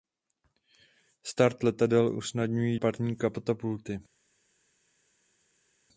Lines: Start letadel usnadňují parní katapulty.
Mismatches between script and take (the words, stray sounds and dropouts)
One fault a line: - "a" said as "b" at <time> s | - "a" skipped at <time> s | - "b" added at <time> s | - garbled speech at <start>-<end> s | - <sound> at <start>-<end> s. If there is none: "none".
none